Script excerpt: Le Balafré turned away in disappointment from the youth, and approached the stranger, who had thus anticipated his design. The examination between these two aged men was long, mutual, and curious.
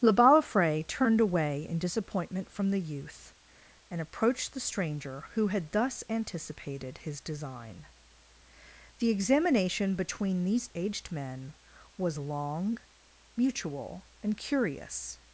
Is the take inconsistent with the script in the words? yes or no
yes